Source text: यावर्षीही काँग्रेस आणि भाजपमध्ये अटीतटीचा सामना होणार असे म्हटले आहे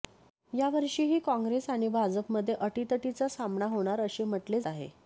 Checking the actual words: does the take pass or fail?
pass